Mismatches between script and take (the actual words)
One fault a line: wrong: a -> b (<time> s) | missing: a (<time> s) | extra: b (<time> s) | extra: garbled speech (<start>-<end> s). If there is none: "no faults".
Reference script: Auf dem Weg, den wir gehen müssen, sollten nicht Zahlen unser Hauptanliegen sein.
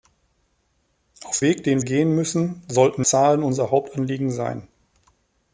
missing: dem (1.4 s)
missing: wir (1.8 s)
missing: nicht (3.1 s)